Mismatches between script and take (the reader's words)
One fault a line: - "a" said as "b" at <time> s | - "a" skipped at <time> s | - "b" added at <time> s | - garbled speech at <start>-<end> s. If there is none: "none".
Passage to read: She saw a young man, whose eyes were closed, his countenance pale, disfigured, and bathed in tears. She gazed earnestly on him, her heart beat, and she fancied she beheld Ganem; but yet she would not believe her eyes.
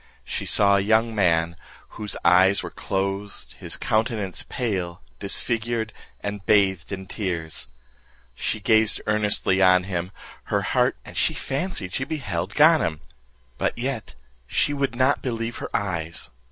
- "beat" skipped at 10.9 s